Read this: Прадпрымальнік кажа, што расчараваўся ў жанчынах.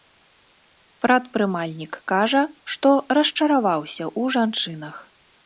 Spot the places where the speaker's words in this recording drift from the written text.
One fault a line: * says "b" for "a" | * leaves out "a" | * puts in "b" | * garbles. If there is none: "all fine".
all fine